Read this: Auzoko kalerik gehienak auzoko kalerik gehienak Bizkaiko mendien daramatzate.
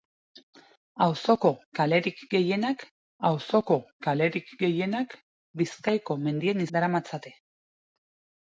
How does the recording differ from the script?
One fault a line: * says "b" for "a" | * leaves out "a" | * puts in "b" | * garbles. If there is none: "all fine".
all fine